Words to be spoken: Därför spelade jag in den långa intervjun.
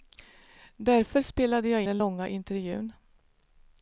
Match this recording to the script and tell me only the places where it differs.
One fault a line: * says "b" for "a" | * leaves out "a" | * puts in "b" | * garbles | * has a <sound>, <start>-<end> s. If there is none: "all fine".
* leaves out "in"